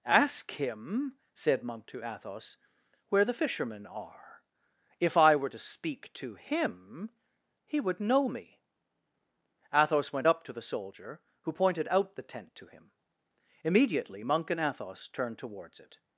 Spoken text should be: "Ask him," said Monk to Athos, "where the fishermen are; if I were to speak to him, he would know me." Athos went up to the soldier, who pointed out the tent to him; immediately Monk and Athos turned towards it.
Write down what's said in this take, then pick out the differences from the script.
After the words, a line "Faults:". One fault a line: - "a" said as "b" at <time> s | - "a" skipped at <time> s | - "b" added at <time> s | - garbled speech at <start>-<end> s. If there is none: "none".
"Ask him," said Monk to Athos, "where the fishermen are; if I were to speak to him, he would know me." Athos went up to the soldier, who pointed out the tent to him; immediately Monk and Athos turned towards it.
Faults:
none